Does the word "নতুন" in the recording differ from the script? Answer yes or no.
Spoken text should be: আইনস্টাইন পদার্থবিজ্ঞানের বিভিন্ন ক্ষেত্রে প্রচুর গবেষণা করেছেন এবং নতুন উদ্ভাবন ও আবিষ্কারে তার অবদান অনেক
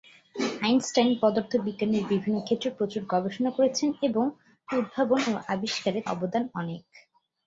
yes